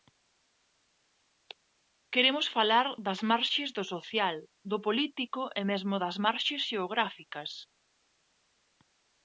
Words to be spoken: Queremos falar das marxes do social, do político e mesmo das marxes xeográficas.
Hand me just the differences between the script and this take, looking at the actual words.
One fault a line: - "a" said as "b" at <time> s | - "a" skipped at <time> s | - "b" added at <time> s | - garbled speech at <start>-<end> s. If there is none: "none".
none